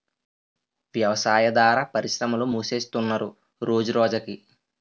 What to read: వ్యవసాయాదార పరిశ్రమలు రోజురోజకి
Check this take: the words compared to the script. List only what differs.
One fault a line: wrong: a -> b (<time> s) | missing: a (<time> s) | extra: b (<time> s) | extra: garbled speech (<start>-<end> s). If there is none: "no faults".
extra: మూసేస్తున్నరు (2.5 s)